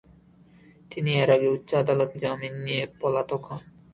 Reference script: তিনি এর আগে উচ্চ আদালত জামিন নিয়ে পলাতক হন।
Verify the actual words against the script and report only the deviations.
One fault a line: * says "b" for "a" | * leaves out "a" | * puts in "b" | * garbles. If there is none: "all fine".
all fine